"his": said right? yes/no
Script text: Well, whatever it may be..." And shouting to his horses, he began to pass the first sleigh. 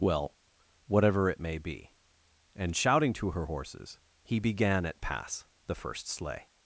no